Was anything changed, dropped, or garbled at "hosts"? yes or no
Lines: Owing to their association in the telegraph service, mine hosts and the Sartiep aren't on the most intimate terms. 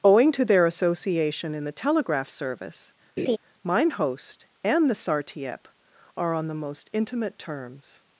yes